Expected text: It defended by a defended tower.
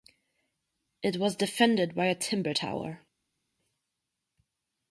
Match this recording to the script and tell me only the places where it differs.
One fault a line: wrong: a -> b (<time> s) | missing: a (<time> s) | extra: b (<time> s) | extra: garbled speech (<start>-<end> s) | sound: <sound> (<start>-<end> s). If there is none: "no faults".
extra: was (1.2 s)
wrong: defended -> timber (2.1 s)